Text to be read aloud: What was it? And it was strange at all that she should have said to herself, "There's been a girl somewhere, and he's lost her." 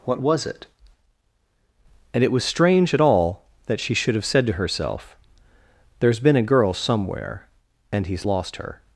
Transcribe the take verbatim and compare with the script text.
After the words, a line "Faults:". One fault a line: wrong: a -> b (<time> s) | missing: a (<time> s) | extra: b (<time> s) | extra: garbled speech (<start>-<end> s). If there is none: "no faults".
What was it? And it was strange at all that she should have said to herself, "There's been a girl somewhere, and he's lost her."
Faults:
no faults